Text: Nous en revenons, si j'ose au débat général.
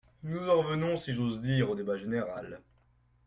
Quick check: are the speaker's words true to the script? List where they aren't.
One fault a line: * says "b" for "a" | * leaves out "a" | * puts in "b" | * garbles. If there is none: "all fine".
* puts in "dire"